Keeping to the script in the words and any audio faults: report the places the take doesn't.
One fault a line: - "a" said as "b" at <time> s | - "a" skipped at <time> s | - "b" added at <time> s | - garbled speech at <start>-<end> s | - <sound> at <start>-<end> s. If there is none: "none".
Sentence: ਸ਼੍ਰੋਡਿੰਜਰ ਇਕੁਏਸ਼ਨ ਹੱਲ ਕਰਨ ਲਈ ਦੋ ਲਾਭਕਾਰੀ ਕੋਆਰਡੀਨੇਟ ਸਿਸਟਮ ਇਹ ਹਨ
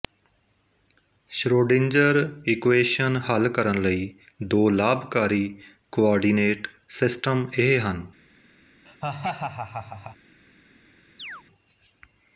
- laugh at 8.9-10.2 s
- chirp at 11.2-11.4 s